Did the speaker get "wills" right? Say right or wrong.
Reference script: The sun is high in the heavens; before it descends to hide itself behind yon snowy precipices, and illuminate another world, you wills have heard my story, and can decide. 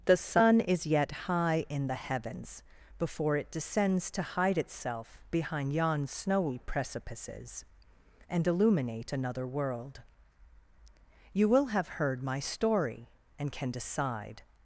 wrong